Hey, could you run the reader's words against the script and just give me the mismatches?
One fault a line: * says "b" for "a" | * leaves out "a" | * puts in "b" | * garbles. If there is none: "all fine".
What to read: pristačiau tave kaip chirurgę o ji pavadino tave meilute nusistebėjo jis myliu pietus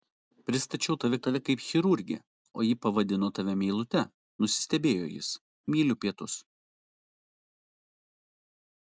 * puts in "tave"